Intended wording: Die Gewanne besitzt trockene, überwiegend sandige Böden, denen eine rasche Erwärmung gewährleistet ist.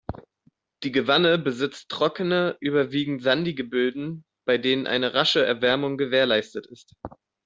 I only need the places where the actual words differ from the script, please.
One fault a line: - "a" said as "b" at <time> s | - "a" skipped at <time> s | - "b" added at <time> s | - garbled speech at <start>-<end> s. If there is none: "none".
- "bei" added at 4.5 s